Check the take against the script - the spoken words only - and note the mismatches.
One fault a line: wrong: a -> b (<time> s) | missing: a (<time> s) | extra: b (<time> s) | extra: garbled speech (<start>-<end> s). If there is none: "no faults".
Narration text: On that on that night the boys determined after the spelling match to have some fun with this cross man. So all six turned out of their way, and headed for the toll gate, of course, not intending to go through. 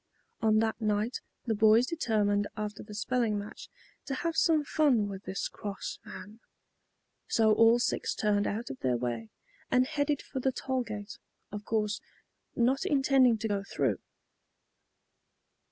missing: on that (0.8 s)